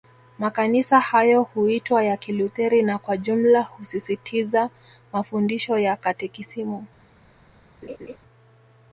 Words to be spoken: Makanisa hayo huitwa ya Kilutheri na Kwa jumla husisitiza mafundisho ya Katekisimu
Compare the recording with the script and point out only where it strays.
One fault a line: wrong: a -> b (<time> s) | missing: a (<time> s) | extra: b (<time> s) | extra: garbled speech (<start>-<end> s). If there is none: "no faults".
no faults